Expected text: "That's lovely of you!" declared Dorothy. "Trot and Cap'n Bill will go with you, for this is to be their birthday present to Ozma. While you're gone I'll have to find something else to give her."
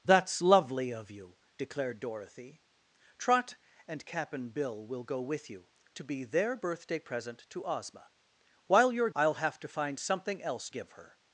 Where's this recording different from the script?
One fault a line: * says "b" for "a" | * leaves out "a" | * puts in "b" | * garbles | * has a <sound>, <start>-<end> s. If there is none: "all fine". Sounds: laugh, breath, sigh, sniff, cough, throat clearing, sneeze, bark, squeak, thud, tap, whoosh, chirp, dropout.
* leaves out "for this is"
* leaves out "gone"
* leaves out "to"